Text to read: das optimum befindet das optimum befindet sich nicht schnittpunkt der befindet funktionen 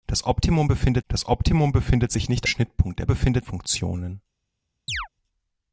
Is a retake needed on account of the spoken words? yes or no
no